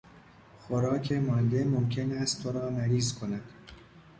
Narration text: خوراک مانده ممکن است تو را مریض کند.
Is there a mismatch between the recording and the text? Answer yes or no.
no